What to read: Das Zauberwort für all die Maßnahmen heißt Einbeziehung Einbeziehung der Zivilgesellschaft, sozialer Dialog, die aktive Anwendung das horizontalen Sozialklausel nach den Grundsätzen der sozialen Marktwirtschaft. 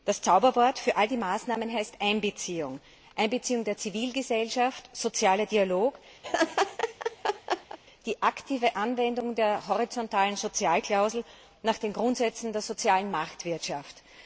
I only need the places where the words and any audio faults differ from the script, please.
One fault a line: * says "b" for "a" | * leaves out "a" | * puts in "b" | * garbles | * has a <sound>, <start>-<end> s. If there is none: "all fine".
* has a laugh, 6.2-7.8 s
* says "der" for "das"